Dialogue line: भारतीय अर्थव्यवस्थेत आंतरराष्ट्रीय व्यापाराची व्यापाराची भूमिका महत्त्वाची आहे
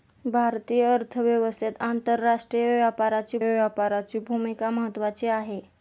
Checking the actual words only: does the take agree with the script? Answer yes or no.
yes